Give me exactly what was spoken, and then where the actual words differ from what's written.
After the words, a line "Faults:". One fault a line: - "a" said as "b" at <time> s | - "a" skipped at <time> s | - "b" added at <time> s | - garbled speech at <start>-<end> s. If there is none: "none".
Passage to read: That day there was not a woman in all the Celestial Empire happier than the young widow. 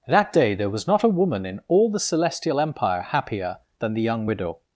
That day there was not a woman in all the Celestial Empire happier than the young widow.
Faults:
none